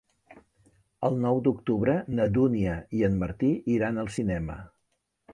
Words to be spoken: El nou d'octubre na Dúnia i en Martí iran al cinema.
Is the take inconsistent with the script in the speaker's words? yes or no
no